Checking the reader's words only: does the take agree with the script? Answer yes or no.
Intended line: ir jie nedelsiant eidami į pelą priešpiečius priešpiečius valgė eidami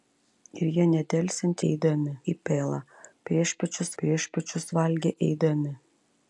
yes